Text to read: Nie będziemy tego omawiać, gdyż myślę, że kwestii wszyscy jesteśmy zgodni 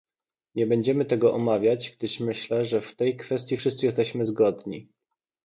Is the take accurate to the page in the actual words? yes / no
no